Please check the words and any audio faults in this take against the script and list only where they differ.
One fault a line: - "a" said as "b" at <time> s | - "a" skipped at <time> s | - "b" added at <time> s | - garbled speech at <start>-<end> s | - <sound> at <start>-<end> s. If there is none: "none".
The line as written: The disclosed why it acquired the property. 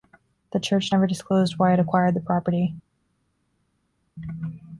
- "church never" added at 0.6 s